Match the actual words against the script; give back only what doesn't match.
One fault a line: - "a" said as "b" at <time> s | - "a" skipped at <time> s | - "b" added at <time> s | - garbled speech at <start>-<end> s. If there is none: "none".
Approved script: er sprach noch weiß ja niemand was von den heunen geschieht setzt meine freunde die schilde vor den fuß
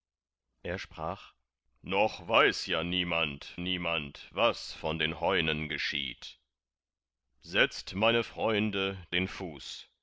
- "niemand" added at 3.6 s
- "die schilde vor" skipped at 9.0 s